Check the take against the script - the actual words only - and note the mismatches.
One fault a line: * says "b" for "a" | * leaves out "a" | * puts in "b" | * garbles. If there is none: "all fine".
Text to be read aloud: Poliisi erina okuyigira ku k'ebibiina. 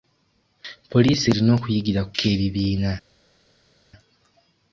all fine